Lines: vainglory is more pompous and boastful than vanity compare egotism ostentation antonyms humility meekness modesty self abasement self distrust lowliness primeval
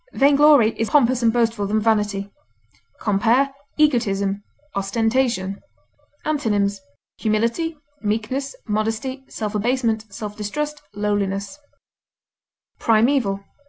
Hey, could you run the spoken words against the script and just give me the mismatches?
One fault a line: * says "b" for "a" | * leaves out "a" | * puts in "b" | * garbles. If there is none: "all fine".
* leaves out "more"